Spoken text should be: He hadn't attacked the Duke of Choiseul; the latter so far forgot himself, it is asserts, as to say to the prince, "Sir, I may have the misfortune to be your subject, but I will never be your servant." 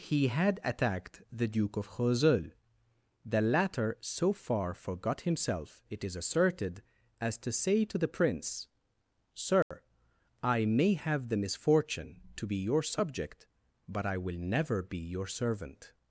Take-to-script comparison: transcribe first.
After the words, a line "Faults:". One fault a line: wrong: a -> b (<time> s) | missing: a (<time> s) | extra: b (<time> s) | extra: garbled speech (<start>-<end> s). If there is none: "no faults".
He had attacked the Duke of Choiseul; the latter so far forgot himself, it is asserted, as to say to the prince, "Sir, I may have the misfortune to be your subject, but I will never be your servant."
Faults:
wrong: hadn't -> had (0.3 s)
wrong: asserts -> asserted (6.2 s)